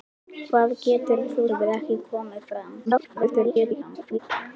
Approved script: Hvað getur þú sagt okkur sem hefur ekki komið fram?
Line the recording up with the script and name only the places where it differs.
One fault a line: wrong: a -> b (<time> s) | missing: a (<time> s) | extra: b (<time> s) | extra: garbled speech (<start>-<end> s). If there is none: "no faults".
missing: sagt okkur sem (1.4 s)
extra: garbled speech (2.9-4.2 s)